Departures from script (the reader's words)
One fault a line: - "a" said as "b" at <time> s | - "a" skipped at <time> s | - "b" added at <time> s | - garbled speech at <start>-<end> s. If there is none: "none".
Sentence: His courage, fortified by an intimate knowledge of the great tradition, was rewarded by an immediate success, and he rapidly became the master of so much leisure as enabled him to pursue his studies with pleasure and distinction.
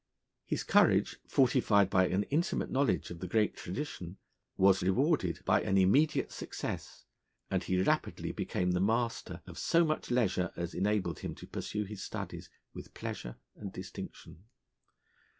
none